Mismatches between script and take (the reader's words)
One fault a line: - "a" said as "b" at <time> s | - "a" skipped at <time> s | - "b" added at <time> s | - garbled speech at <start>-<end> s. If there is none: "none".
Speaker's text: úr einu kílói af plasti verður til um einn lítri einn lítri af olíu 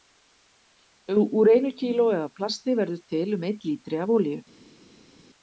- "einn lítri" skipped at 4.0 s